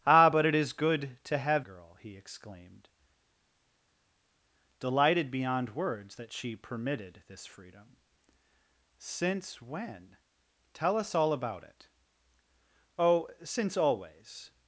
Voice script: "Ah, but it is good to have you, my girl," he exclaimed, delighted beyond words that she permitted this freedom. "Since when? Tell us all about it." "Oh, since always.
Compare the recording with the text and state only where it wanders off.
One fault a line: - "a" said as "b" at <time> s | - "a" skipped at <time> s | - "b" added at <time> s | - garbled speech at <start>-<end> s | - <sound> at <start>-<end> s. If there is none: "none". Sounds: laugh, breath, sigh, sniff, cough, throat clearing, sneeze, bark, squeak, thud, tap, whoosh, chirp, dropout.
- "you my" skipped at 1.7 s